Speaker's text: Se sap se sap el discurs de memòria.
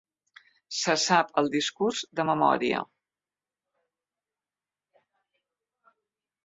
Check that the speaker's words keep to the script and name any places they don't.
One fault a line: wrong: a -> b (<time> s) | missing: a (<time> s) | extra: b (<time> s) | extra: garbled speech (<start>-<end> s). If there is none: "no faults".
missing: se sap (1.3 s)